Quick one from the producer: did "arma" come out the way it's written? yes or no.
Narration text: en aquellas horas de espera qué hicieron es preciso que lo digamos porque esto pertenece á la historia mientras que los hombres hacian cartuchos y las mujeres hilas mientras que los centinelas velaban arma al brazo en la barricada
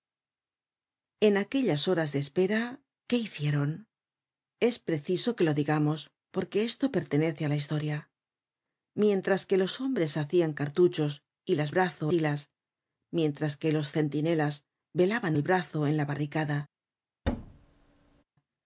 no